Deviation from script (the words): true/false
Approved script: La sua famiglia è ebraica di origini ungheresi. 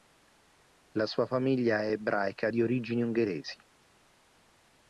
false